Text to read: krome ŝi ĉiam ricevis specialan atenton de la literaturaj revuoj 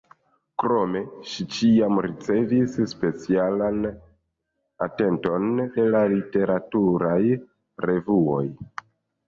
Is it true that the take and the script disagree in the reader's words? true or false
false